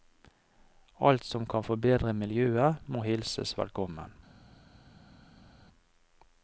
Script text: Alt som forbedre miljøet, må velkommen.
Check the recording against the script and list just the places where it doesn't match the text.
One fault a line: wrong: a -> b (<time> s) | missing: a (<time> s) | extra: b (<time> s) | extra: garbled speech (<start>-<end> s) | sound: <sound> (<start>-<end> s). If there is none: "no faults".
extra: kan (1.4 s)
extra: hilses (3.0 s)